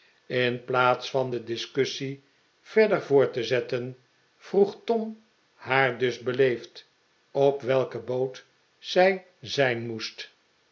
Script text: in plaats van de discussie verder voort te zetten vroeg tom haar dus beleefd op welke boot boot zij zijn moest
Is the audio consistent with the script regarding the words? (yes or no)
no